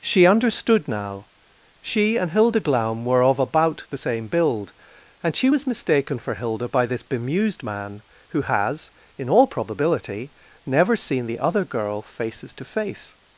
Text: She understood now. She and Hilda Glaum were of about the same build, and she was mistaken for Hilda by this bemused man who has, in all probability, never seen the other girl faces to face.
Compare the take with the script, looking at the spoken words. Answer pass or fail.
pass